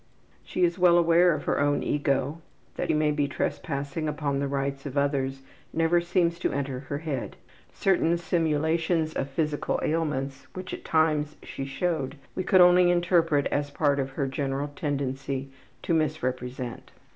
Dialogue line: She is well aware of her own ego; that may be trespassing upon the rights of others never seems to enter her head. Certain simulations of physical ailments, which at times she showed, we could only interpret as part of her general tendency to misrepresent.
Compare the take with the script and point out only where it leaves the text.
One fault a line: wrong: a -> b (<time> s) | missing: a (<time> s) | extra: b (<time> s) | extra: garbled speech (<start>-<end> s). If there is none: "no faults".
no faults